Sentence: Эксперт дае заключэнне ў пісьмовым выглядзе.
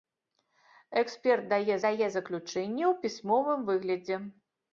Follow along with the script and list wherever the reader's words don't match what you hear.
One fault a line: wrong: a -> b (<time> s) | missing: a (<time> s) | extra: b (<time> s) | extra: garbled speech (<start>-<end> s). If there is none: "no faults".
extra: дае (1.9 s)